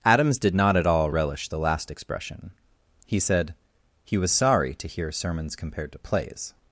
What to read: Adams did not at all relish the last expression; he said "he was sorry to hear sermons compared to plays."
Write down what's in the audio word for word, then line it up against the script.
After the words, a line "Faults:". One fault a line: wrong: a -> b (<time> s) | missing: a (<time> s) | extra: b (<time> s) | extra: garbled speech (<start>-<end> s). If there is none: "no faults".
Adams did not at all relish the last expression; he said "he was sorry to hear sermons compared to plays."
Faults:
no faults